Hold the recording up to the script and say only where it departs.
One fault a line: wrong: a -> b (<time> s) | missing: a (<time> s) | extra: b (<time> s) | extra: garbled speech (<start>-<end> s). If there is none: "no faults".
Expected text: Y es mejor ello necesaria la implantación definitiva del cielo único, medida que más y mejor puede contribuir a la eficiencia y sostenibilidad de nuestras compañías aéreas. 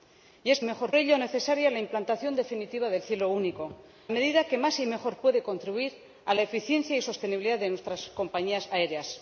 no faults